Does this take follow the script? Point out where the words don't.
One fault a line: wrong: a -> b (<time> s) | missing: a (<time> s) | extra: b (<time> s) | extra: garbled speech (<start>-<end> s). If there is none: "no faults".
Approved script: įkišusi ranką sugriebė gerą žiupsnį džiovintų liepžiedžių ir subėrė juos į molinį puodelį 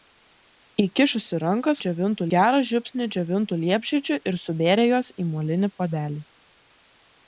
wrong: sugriebė -> džiovintų (1.9 s)